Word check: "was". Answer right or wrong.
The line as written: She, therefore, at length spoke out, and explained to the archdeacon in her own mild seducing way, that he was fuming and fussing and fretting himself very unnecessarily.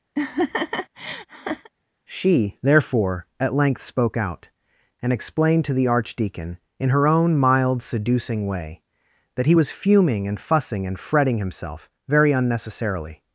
right